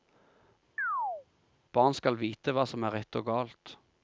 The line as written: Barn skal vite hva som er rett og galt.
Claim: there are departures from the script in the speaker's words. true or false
false